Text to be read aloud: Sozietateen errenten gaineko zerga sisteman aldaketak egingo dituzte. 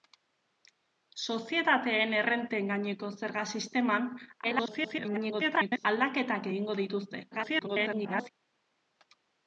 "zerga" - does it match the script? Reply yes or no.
yes